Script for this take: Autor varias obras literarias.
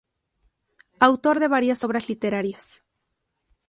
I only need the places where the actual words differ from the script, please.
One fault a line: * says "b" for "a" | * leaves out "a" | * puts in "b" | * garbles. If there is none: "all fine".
* puts in "de"